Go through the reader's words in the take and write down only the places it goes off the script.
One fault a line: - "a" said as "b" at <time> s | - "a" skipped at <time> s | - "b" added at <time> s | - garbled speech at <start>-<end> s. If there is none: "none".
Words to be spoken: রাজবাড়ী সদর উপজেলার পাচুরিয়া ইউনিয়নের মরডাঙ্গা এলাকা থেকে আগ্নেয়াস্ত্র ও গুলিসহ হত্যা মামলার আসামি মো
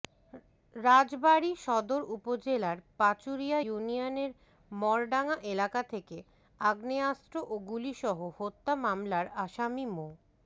none